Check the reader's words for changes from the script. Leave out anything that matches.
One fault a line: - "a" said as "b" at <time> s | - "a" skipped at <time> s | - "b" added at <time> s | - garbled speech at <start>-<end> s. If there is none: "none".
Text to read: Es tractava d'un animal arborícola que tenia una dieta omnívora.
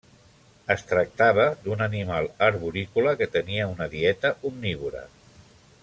none